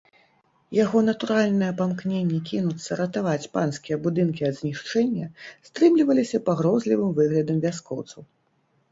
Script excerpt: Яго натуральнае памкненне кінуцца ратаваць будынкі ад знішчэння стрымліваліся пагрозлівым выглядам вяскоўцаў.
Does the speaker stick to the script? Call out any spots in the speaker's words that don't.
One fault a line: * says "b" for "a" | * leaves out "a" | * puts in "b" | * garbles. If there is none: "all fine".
* puts in "панскія"